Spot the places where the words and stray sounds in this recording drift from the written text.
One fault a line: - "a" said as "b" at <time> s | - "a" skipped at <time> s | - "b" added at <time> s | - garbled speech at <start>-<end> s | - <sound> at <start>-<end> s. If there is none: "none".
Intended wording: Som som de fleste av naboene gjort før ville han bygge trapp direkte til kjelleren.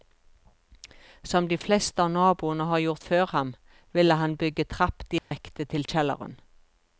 - "som" skipped at 1.5 s
- "har" added at 2.7 s
- "ham" added at 3.4 s
- dropout at 5.2-5.3 s